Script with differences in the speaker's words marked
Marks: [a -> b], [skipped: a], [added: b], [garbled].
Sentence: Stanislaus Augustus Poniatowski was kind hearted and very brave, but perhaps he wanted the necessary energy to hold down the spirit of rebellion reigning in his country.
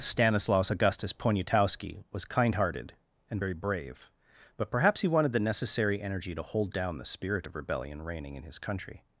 Stanislaus Augustus Poniatowski was kind hearted and very brave, but perhaps he wanted the necessary energy to hold down the spirit of rebellion reigning in his country.